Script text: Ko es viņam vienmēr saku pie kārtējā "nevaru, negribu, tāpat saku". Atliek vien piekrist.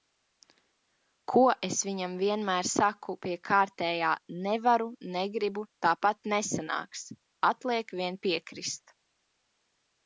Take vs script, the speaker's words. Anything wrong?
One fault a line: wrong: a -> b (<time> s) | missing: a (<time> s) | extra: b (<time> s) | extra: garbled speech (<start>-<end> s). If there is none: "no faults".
wrong: saku -> nesanāks (6.4 s)